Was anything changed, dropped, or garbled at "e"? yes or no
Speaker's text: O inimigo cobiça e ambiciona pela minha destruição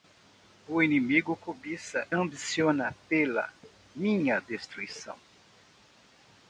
yes